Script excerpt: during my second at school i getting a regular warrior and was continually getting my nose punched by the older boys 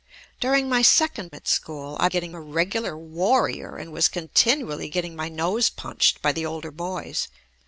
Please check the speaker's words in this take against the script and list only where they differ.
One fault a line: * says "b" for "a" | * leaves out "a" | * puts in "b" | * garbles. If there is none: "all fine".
all fine